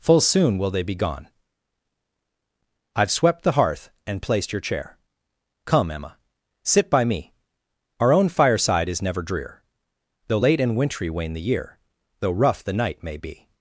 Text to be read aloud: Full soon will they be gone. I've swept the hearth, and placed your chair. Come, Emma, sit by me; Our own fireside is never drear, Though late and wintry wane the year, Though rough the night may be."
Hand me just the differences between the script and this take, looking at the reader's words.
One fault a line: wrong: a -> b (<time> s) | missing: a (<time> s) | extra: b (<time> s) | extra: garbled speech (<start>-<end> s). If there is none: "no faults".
no faults